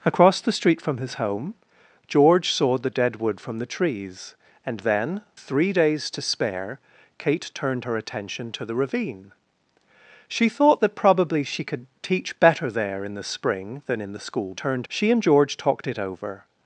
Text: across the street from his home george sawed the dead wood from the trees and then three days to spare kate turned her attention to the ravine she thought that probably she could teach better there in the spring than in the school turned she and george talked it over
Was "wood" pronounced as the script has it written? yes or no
yes